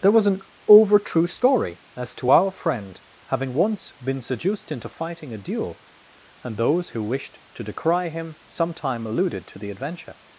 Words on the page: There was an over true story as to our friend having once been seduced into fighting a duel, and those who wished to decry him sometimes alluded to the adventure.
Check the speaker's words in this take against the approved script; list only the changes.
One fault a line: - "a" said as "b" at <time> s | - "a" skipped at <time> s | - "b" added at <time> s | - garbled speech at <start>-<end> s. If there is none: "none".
- "sometimes" said as "sometime" at 8.5 s